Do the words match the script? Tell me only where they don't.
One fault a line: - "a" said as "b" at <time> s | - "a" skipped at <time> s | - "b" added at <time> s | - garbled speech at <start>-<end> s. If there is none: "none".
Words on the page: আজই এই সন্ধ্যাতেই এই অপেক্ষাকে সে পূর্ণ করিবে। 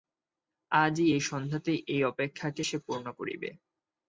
none